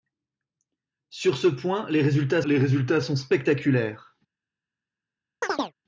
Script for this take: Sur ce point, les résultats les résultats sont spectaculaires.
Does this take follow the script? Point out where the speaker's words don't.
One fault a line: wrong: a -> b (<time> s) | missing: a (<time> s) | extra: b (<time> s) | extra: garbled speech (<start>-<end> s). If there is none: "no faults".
no faults